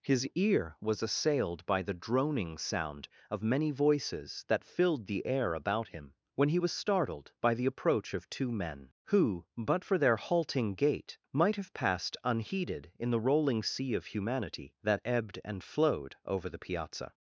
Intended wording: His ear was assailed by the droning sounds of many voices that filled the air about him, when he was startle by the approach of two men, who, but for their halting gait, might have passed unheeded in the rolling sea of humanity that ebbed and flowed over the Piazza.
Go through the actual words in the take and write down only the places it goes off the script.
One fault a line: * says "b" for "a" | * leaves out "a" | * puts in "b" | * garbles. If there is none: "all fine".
* says "sound" for "sounds"
* says "startled" for "startle"